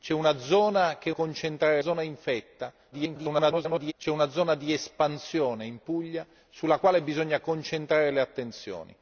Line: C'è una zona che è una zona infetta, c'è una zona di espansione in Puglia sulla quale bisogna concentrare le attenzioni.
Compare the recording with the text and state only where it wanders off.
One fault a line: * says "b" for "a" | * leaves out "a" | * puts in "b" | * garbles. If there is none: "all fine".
* says "concentrare" for "una"
* garbles